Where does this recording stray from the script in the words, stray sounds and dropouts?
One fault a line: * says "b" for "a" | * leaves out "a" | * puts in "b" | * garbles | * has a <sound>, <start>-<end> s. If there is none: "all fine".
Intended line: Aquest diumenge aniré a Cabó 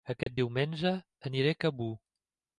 * has a dropout, 0.2-0.3 s